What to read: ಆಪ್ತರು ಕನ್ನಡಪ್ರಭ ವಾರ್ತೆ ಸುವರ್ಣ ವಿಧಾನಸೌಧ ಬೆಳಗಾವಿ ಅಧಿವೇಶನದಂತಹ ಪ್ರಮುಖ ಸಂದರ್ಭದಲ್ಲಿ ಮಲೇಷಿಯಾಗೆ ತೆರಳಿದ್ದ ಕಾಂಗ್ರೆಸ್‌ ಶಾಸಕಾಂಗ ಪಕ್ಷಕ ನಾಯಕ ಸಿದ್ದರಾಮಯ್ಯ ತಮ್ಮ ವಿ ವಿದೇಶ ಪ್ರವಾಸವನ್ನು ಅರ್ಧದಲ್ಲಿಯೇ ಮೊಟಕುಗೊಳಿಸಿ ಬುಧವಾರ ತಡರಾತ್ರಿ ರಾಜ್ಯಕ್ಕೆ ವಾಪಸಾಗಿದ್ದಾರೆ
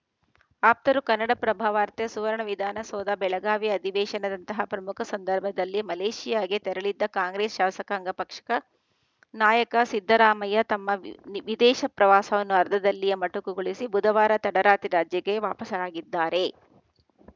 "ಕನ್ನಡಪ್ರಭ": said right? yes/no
yes